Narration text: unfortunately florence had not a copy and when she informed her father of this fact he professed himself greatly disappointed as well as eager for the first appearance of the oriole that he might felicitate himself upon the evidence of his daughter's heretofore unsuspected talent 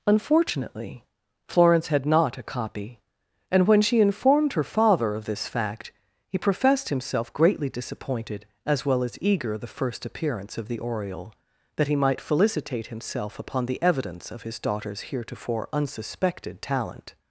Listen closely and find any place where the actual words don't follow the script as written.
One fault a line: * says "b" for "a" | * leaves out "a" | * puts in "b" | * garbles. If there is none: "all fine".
* leaves out "for"